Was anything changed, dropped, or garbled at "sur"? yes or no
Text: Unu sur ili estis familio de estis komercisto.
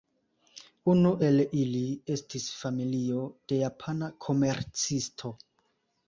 yes